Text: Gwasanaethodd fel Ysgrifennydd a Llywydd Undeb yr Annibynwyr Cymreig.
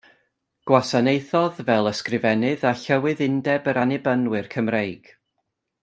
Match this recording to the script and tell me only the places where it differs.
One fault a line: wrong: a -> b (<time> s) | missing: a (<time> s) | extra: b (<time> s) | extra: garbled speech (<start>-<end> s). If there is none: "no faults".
no faults